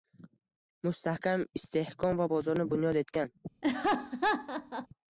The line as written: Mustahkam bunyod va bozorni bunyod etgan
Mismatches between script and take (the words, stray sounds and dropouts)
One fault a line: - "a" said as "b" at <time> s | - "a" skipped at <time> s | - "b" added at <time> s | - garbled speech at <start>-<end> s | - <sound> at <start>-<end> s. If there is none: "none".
- "bunyod" said as "istehkom" at 1.6 s
- laugh at 3.6-4.9 s